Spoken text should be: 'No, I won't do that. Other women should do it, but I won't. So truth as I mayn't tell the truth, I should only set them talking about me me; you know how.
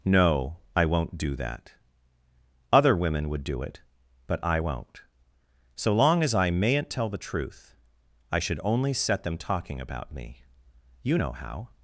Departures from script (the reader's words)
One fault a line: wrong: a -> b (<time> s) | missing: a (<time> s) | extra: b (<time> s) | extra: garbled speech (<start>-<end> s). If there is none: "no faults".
wrong: should -> would (3.3 s)
wrong: truth -> long (5.9 s)
missing: me (10.4 s)